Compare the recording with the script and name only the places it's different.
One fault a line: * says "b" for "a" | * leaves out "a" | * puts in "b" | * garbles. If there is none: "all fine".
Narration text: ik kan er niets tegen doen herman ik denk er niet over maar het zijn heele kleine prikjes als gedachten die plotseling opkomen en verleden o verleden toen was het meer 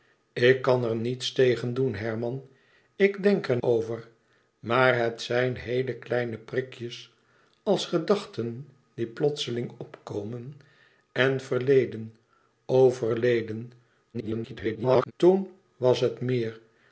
* leaves out "niet"
* garbles